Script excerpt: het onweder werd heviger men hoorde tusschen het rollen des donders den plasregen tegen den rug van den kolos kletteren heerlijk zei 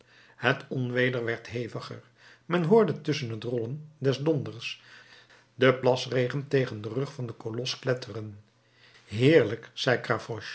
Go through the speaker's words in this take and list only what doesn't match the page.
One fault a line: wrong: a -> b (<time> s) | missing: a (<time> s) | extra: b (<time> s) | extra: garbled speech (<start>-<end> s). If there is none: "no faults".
no faults